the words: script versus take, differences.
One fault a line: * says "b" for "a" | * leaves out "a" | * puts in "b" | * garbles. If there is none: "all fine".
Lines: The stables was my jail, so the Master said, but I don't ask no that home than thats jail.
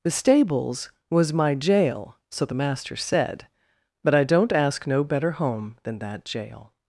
* says "better" for "that"
* says "that" for "thats"